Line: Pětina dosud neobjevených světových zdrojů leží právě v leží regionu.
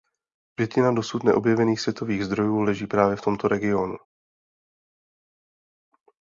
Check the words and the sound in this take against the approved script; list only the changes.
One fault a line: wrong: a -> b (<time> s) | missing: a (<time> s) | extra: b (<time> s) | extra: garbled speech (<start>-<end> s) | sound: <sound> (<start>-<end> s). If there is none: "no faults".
wrong: leží -> tomto (3.2 s)